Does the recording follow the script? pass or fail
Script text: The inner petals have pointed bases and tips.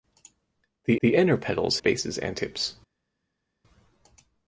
fail